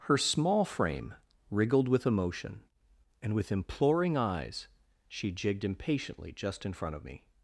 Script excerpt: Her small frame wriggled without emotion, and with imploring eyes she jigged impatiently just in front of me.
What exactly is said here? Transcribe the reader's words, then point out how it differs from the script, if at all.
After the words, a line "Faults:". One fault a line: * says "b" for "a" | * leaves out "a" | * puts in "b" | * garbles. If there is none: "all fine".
Her small frame wriggled with emotion, and with imploring eyes she jigged impatiently just in front of me.
Faults:
* says "with" for "without"